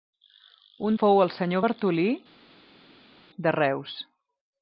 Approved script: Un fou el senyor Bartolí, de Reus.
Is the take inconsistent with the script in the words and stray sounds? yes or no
no